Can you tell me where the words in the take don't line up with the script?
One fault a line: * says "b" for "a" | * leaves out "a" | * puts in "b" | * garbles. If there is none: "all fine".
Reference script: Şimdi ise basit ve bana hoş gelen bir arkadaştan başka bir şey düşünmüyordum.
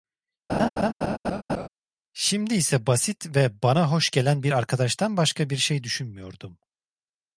all fine